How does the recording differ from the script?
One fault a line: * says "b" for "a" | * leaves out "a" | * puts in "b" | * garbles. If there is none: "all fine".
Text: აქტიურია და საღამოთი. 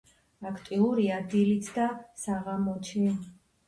* puts in "დილით"